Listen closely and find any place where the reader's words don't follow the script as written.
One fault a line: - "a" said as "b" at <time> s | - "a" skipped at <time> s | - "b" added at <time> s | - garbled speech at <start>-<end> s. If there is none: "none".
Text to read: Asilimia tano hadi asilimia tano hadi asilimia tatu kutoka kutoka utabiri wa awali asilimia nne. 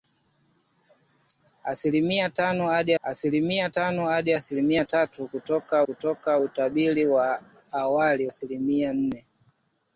none